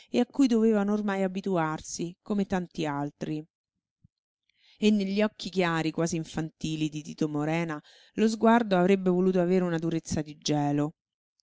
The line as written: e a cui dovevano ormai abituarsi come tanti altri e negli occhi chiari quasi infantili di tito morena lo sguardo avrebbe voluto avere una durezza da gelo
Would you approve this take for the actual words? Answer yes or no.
no